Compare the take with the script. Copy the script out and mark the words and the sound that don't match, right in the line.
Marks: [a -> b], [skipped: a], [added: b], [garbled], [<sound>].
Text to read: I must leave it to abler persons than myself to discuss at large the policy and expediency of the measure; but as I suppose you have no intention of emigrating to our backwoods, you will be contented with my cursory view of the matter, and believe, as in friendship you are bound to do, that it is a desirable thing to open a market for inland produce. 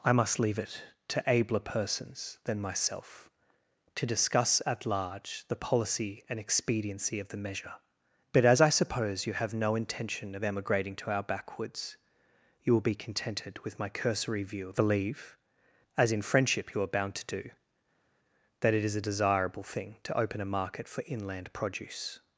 I must leave it to abler persons than myself to discuss at large the policy and expediency of the measure; but as I suppose you have no intention of emigrating to our backwoods, you will be contented with my cursory view of [skipped: the matter, and] believe, as in friendship you are bound to do, that it is a desirable thing to open a market for inland produce.